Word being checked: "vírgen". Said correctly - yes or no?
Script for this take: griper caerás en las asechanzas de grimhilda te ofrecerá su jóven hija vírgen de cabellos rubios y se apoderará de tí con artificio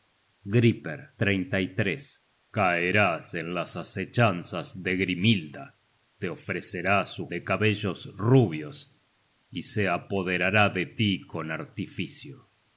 no